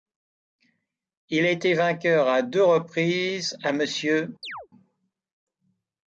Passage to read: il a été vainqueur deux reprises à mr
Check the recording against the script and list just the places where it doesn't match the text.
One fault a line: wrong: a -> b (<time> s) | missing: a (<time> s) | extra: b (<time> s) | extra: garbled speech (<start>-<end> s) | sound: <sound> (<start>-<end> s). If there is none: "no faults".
extra: à (2.3 s)
sound: chirp (4.4-4.7 s)